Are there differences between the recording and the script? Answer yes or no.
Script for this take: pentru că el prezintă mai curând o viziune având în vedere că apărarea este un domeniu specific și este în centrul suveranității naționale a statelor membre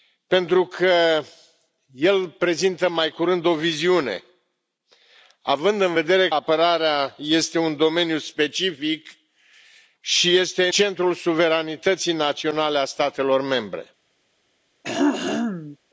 yes